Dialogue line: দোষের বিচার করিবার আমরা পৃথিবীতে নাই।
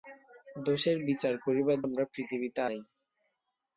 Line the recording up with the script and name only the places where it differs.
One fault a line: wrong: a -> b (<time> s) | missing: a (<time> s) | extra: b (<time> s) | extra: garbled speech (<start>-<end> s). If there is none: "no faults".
no faults